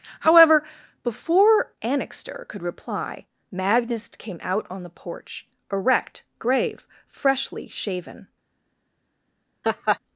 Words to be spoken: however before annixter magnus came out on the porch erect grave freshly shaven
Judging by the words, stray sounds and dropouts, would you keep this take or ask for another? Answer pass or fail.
fail